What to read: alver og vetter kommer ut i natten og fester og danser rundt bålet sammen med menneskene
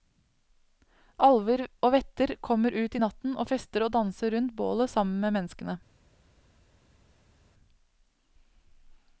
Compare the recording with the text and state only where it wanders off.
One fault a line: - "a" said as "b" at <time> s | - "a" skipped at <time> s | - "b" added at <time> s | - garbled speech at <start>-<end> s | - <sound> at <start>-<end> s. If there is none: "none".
none